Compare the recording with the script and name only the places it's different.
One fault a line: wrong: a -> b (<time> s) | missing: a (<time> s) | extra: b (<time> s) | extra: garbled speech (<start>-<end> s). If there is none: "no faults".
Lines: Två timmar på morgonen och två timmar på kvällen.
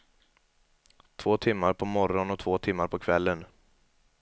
no faults